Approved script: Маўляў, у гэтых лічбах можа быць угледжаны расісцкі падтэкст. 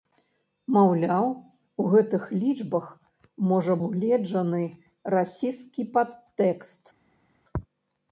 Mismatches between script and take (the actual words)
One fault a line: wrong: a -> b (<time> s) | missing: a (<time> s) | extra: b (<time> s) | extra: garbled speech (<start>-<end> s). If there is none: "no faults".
missing: быць (3.8 s)